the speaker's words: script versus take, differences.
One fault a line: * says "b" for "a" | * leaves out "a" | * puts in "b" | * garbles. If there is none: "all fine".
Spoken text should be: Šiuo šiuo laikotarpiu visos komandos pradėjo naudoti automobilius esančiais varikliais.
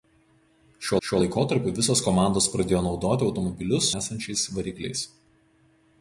all fine